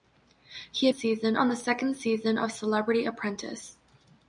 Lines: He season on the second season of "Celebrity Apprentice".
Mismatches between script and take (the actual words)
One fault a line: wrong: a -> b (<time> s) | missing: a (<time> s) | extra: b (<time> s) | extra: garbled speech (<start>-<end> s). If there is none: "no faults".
no faults